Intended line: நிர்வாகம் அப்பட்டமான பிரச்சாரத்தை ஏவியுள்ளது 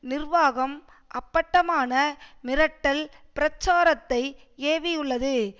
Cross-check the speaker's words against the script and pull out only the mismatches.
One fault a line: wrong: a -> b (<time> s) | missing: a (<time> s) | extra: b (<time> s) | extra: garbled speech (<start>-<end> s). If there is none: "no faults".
extra: மிரட்டல் (2.4 s)